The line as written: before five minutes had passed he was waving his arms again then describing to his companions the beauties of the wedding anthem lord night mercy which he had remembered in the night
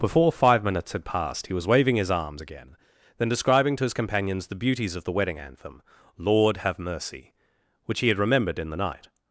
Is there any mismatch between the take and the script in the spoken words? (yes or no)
yes